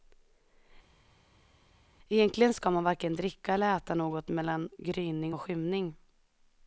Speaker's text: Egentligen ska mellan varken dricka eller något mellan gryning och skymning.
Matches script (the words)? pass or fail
fail